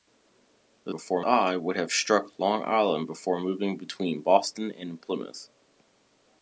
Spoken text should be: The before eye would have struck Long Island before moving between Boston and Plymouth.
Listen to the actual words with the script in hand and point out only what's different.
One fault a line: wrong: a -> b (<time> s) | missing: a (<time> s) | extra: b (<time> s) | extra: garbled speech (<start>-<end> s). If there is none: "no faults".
no faults